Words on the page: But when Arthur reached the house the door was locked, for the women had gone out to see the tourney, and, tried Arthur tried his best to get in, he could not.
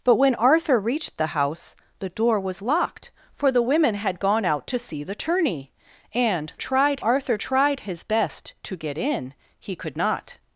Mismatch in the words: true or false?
false